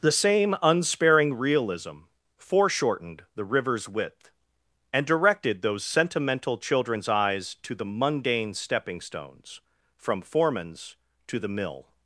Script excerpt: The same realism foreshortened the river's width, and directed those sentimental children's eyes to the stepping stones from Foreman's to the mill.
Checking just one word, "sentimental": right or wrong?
right